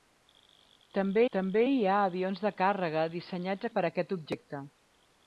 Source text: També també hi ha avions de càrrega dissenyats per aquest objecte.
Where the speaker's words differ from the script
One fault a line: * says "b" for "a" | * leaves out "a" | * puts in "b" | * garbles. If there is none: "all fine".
all fine